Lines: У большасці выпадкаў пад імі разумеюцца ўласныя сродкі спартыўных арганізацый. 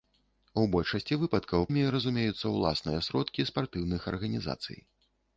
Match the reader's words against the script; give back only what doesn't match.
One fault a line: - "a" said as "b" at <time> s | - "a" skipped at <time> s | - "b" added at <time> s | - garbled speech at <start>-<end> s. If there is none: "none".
- "пад" skipped at 1.7 s